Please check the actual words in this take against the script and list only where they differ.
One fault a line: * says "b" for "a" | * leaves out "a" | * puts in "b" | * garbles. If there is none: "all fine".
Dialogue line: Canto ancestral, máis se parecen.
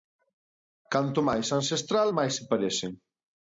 * puts in "máis"